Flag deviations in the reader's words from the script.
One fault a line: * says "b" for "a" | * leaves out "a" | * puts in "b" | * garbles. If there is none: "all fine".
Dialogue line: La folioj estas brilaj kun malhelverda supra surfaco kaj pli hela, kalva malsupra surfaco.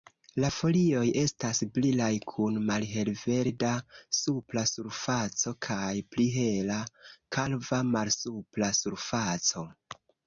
all fine